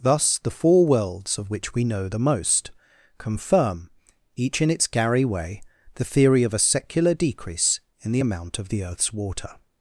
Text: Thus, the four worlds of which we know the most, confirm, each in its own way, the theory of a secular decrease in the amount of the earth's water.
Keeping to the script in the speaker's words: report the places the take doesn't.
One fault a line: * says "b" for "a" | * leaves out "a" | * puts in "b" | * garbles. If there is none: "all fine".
* says "gary" for "own"